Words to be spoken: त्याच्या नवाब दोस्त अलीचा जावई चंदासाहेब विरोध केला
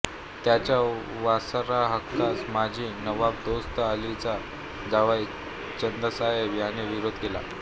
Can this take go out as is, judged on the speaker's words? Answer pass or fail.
fail